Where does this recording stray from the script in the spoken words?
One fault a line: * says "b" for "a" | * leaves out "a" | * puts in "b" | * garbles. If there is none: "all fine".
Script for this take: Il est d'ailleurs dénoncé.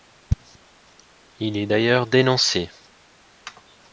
all fine